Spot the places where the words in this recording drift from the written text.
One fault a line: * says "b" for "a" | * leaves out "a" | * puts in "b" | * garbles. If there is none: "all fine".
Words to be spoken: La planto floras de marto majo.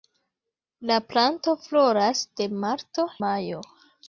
all fine